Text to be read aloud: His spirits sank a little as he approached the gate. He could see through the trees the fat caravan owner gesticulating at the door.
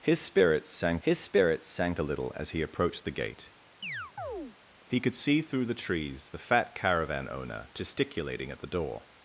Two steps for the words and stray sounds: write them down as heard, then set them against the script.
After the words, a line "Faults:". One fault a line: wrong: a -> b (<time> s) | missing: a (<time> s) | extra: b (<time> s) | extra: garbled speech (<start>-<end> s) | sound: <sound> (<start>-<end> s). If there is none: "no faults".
His spirits sank his spirits sank a little as he approached the gate. He could see through the trees the fat caravan owner gesticulating at the door.
Faults:
extra: his spirits sank (1.0 s)
sound: chirp (3.8-4.6 s)